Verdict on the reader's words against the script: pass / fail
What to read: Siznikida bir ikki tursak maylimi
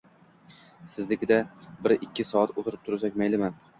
fail